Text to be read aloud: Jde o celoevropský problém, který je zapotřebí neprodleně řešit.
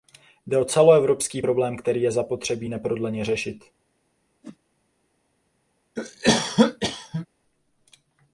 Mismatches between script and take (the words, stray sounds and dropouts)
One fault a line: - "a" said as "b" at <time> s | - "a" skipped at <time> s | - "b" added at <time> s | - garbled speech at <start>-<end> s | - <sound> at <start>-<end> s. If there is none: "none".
- whoosh at 4.4-4.6 s
- cough at 6.0-7.3 s